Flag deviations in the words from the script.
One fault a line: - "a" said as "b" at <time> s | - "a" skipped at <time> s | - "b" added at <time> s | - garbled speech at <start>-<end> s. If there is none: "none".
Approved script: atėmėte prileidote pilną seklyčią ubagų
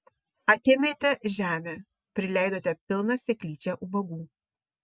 - "žemę" added at 1.4 s